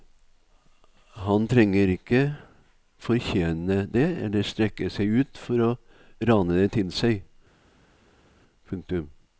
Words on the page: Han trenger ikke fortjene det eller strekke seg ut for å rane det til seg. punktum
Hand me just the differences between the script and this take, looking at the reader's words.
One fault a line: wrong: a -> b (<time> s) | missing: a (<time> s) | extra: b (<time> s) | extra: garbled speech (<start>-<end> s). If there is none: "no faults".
no faults